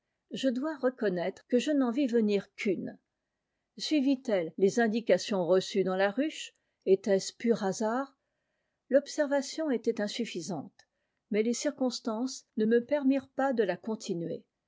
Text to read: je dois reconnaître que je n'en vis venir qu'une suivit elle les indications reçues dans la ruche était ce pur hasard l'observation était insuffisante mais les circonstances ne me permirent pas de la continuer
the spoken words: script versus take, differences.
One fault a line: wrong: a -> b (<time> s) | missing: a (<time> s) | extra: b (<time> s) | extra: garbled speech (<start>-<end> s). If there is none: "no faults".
no faults